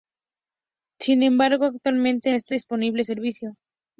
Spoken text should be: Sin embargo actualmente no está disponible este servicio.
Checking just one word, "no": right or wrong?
wrong